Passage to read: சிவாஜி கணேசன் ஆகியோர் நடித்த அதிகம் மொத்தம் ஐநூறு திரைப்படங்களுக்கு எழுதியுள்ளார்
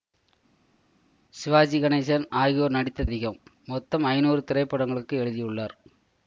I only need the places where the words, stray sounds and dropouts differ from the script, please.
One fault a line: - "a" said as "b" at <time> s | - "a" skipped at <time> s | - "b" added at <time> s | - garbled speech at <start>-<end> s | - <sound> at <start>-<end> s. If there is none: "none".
none